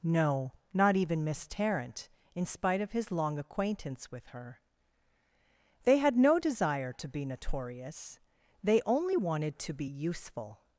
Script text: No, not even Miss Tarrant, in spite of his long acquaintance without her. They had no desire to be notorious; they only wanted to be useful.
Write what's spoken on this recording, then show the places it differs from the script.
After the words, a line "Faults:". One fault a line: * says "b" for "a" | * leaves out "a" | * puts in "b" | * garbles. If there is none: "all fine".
No, not even Miss Tarrant, in spite of his long acquaintance with her. They had no desire to be notorious; they only wanted to be useful.
Faults:
* says "with" for "without"